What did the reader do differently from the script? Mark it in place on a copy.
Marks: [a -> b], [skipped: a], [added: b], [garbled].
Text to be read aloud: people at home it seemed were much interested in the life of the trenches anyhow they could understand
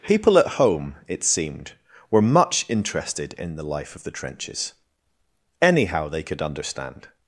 people at home it seemed were much interested in the life of the trenches anyhow they could understand